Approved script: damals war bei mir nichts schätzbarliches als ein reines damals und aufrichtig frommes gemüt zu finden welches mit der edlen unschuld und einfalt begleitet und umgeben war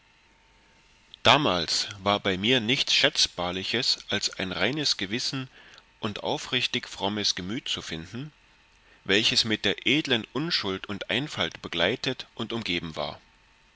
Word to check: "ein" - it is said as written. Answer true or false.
true